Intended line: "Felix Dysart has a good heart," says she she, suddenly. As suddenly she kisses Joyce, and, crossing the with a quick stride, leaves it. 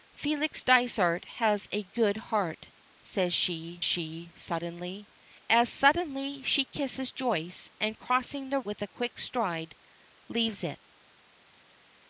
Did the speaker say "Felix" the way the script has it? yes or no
yes